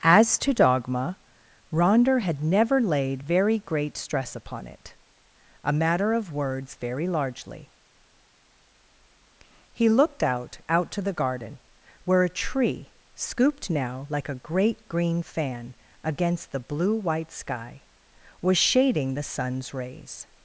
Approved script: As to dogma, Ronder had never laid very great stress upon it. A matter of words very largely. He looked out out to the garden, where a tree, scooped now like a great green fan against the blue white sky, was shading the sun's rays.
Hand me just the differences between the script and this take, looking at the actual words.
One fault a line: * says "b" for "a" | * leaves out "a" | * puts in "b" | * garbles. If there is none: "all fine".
all fine